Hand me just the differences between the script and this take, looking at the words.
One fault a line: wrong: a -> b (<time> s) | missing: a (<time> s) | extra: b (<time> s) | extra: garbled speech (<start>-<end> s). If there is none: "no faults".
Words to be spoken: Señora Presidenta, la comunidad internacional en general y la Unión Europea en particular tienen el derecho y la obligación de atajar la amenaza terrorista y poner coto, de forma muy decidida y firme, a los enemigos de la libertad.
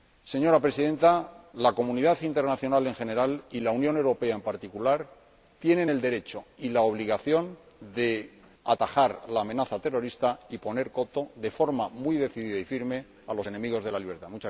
no faults